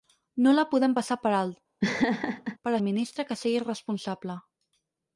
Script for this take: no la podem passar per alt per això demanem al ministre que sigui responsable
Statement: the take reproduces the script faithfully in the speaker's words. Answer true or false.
false